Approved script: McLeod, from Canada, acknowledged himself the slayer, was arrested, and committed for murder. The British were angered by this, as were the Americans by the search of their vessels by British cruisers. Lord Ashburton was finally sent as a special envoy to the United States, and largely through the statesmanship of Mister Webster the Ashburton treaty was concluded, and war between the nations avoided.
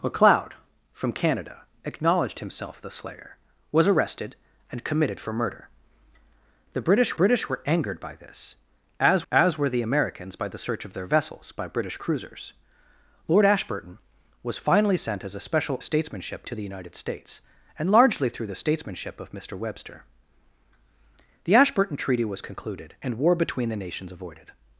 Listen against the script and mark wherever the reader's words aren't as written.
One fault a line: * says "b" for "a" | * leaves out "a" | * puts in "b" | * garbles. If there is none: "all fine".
* puts in "British"
* puts in "as"
* says "statesmanship" for "envoy"